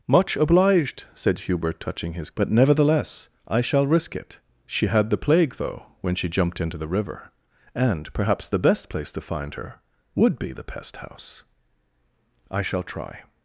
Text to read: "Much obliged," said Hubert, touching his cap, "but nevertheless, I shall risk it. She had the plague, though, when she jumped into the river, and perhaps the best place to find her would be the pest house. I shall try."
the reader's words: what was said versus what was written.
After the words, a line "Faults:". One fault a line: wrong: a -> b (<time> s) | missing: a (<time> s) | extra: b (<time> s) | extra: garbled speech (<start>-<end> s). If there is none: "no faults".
"Much obliged," said Hubert, touching his "but nevertheless, I shall risk it. She had the plague, though, when she jumped into the river, and perhaps the best place to find her would be the pest house. I shall try."
Faults:
missing: cap (2.3 s)